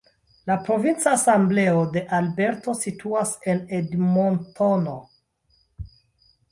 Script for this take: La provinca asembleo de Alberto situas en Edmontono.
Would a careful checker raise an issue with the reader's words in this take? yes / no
no